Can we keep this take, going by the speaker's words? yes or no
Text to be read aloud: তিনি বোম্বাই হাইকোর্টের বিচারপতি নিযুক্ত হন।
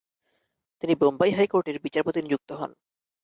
yes